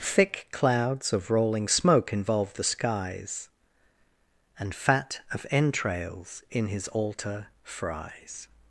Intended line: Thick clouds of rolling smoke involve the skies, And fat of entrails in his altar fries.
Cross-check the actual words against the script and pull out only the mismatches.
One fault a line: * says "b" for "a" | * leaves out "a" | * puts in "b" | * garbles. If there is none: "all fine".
all fine